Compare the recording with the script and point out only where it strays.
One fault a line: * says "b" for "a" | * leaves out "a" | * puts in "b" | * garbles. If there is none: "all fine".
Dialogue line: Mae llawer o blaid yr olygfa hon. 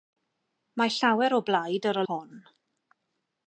* leaves out "olygfa"